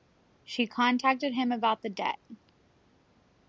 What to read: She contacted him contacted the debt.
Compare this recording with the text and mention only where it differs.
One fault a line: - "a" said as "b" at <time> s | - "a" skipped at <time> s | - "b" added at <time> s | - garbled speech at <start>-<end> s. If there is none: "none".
- "contacted" said as "about" at 1.5 s